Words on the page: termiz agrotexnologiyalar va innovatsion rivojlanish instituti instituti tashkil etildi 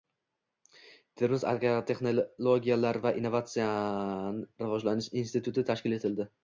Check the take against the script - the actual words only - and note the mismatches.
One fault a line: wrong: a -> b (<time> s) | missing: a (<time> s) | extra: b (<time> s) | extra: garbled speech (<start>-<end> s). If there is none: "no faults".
missing: instituti (5.7 s)